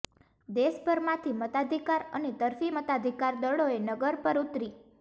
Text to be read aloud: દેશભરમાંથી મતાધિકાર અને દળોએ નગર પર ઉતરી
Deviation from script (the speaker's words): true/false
true